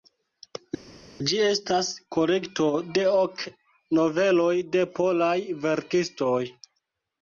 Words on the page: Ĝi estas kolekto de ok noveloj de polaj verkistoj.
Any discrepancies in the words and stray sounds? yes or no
no